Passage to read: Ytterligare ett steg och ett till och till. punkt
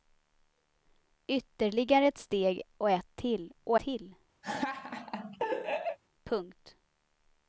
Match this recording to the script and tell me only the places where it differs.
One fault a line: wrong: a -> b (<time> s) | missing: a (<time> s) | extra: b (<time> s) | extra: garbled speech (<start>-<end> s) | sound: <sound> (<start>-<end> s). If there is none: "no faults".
sound: laugh (4.4-6.0 s)